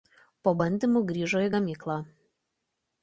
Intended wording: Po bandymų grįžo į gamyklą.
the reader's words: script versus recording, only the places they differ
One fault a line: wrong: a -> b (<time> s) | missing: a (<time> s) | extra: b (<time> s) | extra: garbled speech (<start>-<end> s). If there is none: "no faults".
no faults